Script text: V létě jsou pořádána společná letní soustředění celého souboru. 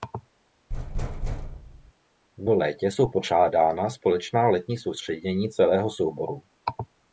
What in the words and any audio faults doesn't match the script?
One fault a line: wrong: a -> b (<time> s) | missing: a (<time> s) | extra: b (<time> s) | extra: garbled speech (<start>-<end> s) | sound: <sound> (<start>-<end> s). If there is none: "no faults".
sound: thud (0.7-1.9 s)